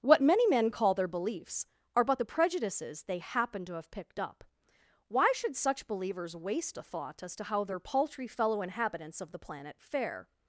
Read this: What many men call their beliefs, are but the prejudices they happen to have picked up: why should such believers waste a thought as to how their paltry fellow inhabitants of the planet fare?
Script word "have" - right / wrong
right